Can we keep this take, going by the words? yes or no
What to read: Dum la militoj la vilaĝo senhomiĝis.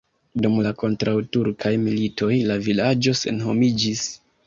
no